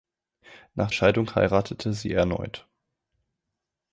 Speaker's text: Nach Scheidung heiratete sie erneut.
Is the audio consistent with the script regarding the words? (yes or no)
yes